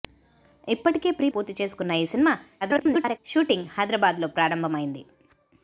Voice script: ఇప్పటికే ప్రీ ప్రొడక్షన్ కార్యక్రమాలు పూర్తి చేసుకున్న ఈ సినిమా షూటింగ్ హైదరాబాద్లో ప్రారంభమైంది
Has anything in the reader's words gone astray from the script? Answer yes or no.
yes